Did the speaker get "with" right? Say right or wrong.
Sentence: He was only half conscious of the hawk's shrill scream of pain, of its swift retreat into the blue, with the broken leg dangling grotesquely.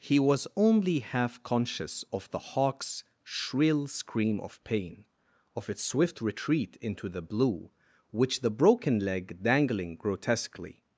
wrong